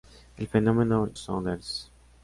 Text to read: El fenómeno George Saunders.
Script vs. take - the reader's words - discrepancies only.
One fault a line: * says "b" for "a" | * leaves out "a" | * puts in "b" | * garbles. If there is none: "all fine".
* leaves out "George"